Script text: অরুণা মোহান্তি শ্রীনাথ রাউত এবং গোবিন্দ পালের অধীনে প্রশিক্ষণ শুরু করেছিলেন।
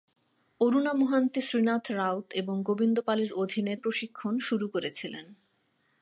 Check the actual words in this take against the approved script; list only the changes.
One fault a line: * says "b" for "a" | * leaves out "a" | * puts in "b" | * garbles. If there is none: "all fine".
all fine